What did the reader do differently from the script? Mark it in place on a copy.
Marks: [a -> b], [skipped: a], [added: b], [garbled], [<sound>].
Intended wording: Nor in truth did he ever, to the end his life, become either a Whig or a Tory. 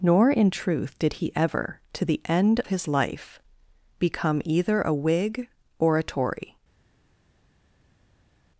Nor in truth did he ever, to the end his life, become either a Whig or a Tory.